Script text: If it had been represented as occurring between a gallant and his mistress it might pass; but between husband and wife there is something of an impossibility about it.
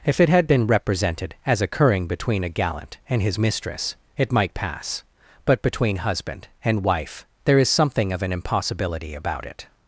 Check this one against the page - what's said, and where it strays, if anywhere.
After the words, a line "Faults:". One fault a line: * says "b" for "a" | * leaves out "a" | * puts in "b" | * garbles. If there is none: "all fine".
If it had been represented as occurring between a gallant and his mistress it might pass; but between husband and wife there is something of an impossibility about it.
Faults:
all fine